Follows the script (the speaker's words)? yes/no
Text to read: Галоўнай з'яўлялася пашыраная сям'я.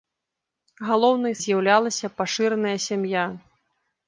yes